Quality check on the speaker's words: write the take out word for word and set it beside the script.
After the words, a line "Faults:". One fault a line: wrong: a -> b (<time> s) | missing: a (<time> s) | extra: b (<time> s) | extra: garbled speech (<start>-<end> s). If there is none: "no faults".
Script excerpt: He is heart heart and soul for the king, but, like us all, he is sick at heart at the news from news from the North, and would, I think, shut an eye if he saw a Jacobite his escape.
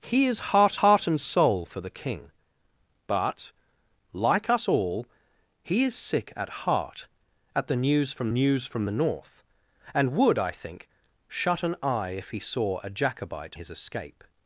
He is heart heart and soul for the king, but, like us all, he is sick at heart at the news from news from the North, and would, I think, shut an eye if he saw a Jacobite his escape.
Faults:
no faults